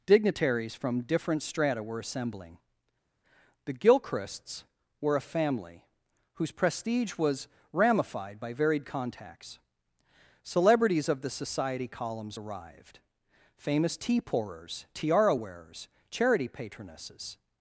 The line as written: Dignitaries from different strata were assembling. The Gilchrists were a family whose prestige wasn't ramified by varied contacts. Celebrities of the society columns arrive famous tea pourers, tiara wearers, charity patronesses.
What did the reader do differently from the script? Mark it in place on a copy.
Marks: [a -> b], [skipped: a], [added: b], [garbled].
Dignitaries from different strata were assembling. The Gilchrists were a family whose prestige [wasn't -> was] ramified by varied contacts. Celebrities of the society columns [arrive -> arrived] famous tea pourers, tiara wearers, charity patronesses.